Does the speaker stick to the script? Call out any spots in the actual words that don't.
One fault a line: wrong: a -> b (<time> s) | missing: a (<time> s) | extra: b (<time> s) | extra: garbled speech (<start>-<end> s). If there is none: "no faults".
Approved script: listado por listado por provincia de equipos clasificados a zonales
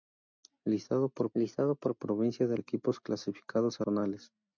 no faults